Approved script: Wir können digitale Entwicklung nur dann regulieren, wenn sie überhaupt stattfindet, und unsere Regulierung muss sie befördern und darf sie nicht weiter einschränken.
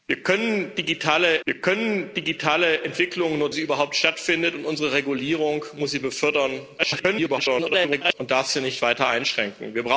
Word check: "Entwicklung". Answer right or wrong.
wrong